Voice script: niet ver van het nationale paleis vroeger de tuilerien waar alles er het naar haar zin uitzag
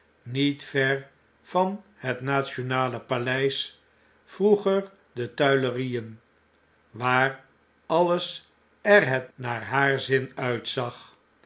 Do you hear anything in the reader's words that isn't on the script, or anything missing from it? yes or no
no